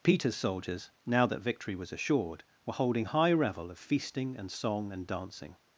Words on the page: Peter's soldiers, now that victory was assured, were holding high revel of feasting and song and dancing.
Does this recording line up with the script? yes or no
yes